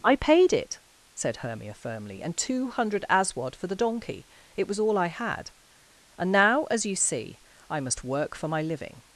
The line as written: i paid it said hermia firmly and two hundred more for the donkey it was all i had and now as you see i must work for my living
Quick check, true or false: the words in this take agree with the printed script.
false